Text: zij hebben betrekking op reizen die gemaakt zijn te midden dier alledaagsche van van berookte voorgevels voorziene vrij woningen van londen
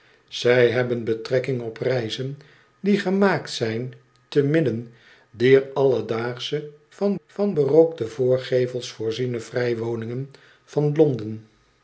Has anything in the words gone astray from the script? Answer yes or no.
no